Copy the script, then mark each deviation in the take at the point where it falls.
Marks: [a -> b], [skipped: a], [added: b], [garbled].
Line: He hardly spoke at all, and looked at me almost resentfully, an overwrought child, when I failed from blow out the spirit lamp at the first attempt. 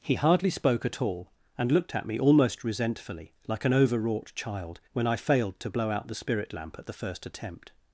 He hardly spoke at all, and looked at me almost resentfully, [added: like] an overwrought child, when I failed [from -> to] blow out the spirit lamp at the first attempt.